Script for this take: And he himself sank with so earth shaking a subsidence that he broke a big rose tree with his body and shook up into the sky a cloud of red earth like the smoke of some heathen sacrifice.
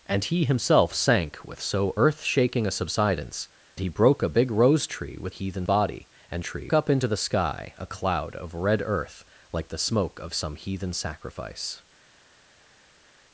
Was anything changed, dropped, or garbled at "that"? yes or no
yes